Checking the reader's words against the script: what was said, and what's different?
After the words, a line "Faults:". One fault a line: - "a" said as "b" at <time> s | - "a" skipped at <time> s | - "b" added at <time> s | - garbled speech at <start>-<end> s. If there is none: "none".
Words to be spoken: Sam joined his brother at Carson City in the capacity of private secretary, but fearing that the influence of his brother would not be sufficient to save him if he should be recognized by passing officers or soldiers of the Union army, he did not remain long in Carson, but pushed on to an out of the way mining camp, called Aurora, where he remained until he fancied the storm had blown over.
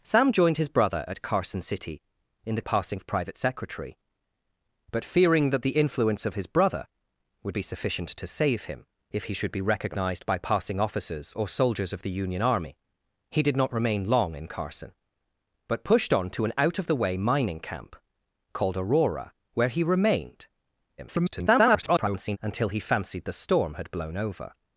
Sam joined his brother at Carson City in the passing of private secretary, but fearing that the influence of his brother would be sufficient to save him if he should be recognized by passing officers or soldiers of the Union army, he did not remain long in Carson, but pushed on to an out of the way mining camp, called Aurora, where he remained [garbled] until he fancied the storm had blown over.
Faults:
- "capacity" said as "passing" at 2.6 s
- "not" skipped at 7.6 s
- garbled speech at 21.0-22.4 s